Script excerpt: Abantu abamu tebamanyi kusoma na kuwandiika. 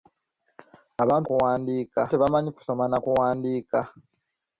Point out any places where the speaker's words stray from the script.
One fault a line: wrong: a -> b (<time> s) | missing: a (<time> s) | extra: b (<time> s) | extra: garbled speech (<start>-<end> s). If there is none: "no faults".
wrong: abamu -> kuwandiika (1.3 s)